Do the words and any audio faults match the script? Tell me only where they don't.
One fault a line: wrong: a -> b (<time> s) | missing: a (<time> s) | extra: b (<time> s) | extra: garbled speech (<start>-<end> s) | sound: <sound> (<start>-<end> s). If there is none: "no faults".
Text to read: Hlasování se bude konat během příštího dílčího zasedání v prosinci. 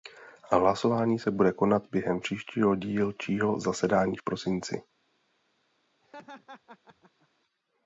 sound: laugh (6.0-7.3 s)